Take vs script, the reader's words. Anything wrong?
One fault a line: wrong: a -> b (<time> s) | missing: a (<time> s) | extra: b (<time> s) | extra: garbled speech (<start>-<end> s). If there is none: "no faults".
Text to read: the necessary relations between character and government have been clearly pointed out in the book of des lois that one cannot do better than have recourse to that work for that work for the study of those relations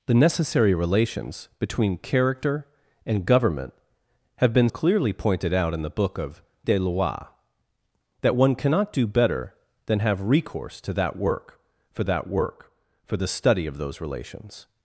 no faults